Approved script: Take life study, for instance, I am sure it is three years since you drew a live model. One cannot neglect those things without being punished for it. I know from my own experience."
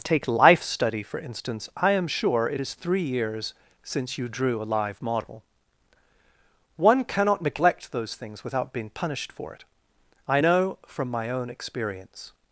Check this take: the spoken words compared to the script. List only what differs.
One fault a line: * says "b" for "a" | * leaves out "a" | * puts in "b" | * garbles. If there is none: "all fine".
all fine